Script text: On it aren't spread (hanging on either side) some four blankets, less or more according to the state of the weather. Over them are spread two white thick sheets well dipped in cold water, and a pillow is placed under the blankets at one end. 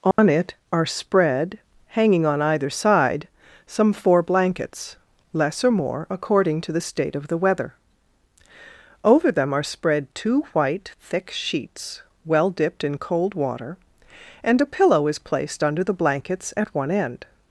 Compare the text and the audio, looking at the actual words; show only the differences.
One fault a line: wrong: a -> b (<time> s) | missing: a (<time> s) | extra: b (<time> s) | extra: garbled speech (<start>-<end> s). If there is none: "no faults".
wrong: aren't -> are (0.7 s)